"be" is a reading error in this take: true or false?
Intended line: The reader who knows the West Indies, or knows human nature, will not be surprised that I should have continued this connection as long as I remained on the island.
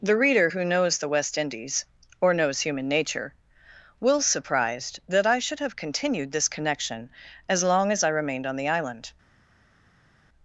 true